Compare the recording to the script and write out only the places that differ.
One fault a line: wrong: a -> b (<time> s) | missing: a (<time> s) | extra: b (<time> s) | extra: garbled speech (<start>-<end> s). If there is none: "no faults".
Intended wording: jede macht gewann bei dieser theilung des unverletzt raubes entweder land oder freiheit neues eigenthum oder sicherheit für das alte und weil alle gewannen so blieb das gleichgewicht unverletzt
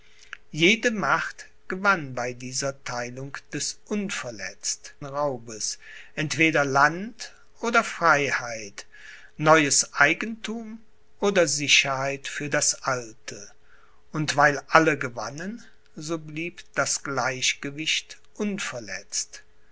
no faults